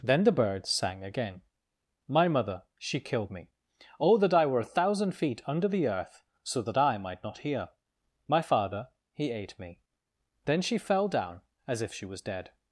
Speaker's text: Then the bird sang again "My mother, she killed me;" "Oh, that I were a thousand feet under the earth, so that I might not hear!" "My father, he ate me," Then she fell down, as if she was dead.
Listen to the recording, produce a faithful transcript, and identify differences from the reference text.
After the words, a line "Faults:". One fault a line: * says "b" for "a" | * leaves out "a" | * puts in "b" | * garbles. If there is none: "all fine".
Then the bird sang again "My mother, she killed me;" "Oh, that I were a thousand feet under the earth, so that I might not hear!" "My father, he ate me," Then she fell down, as if she was dead.
Faults:
all fine